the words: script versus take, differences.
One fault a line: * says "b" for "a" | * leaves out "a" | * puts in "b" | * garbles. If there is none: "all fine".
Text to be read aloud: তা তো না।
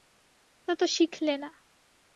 * puts in "শিখলে"